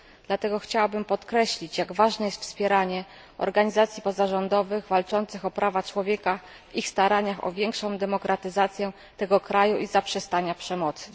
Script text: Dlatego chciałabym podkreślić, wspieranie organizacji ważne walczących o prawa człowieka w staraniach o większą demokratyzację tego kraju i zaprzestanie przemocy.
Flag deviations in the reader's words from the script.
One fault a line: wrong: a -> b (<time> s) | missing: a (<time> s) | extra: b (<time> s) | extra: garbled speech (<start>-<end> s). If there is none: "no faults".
extra: jak ważne jest (1.8 s)
wrong: ważne -> pozarządowych (4.0 s)
extra: ich (6.7 s)